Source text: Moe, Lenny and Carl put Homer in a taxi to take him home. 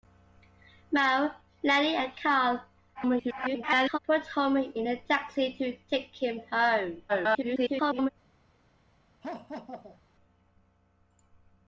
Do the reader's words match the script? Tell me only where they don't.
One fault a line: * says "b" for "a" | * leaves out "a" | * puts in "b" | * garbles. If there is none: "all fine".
* garbles
* garbles